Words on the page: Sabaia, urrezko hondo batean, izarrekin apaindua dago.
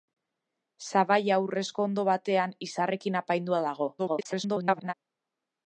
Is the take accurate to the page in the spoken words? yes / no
no